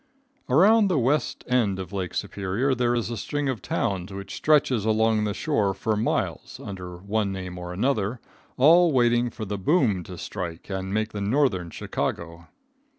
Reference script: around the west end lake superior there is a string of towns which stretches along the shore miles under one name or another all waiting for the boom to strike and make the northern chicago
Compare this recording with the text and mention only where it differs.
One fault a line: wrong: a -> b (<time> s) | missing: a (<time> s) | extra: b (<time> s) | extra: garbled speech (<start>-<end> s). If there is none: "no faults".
extra: of (1.8 s)
extra: for (5.7 s)